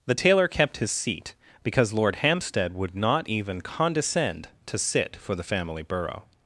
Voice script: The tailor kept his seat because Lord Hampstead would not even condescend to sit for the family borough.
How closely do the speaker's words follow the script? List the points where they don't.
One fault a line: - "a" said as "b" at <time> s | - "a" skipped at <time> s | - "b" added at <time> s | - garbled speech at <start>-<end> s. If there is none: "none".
none